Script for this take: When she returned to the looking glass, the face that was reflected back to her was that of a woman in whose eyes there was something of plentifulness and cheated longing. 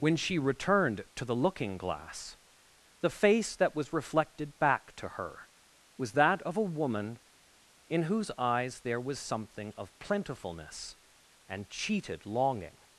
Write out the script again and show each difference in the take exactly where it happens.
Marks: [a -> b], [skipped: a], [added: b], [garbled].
When she returned to the looking glass, the face that was reflected back to her was that of a woman in whose eyes there was something of plentifulness and cheated longing.